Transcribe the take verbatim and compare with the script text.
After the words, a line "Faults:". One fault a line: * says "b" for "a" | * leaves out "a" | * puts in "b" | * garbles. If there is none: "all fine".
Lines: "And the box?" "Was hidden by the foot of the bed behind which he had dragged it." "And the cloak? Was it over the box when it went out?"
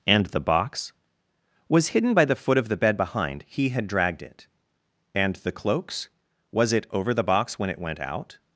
"And the box?" "Was hidden by the foot of the bed behind he had dragged it." "And the cloaks? Was it over the box when it went out?"
Faults:
* leaves out "which"
* says "cloaks" for "cloak"